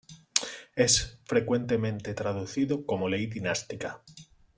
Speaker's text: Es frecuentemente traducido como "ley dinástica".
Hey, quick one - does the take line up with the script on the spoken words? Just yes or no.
yes